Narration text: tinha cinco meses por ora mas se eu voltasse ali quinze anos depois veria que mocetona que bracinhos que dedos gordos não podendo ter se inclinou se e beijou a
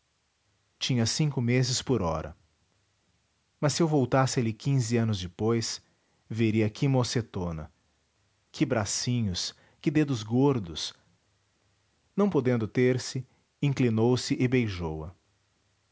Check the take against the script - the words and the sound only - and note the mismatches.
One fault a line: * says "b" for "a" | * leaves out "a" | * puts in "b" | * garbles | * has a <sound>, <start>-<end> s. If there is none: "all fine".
all fine